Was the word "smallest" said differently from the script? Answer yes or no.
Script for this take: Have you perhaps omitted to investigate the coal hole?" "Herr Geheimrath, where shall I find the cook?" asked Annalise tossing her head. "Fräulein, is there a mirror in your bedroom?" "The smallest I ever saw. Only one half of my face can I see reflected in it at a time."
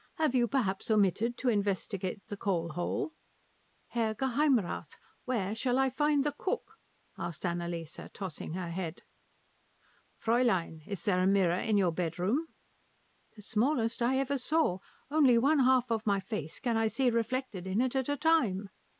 no